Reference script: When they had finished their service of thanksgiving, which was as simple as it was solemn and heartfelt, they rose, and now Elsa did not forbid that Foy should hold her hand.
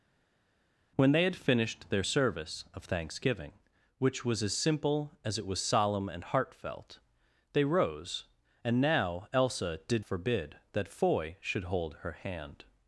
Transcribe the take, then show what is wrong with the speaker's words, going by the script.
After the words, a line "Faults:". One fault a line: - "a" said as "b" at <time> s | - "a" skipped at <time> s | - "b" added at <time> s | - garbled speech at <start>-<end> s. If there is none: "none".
When they had finished their service of thanksgiving, which was as simple as it was solemn and heartfelt, they rose, and now Elsa did forbid that Foy should hold her hand.
Faults:
- "not" skipped at 10.0 s